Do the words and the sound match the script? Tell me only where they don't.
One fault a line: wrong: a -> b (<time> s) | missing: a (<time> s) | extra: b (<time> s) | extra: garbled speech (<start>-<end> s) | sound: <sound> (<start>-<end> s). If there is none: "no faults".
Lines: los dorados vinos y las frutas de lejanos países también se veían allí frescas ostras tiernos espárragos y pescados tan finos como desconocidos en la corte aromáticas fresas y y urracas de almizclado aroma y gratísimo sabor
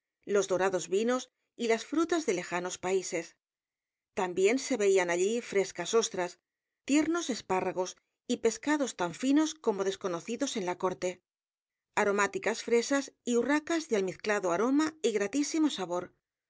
missing: y (13.3 s)